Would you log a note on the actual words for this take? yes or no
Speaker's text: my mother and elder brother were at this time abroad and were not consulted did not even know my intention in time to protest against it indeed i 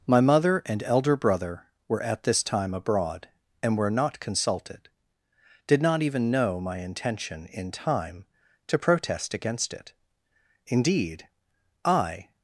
no